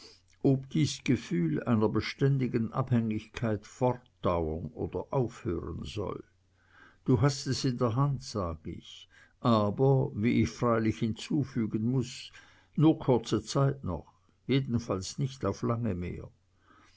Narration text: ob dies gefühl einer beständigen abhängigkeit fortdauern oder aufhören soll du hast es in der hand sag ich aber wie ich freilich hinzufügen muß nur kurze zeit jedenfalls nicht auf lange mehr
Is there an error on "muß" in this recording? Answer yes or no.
no